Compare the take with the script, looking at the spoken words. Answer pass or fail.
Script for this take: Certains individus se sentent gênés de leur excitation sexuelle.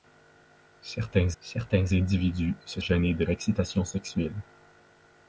fail